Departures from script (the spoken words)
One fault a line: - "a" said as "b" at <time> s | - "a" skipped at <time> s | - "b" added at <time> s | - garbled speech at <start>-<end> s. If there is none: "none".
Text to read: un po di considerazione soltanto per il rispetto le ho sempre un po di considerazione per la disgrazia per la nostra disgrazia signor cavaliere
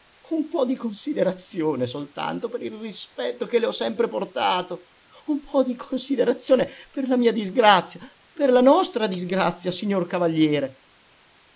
- "che" added at 3.5 s
- "portato" added at 4.1 s
- "mia" added at 7.2 s